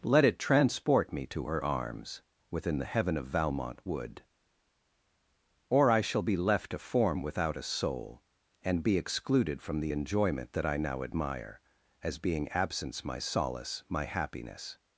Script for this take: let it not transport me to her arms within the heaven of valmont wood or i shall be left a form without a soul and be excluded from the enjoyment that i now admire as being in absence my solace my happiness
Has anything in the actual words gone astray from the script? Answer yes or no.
yes